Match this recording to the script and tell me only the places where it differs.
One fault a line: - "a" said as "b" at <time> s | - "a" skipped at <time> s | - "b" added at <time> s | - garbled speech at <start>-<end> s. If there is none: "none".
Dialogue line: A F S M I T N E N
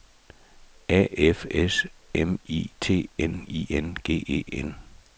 - "I N G" added at 3.5 s